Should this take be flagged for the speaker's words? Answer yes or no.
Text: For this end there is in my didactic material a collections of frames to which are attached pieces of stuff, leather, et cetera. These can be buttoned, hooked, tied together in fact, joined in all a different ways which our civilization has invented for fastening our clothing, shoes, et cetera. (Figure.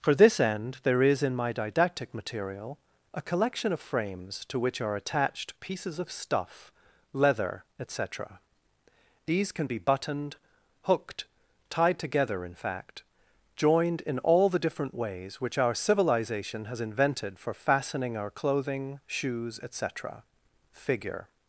yes